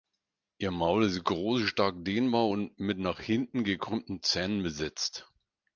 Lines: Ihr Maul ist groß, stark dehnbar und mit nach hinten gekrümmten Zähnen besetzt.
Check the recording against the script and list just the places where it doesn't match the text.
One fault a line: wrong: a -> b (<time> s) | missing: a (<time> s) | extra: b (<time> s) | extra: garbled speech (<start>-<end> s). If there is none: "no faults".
no faults